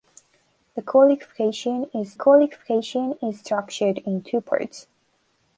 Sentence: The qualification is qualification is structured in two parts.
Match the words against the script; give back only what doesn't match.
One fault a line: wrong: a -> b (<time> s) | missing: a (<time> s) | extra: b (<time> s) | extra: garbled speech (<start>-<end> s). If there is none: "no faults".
no faults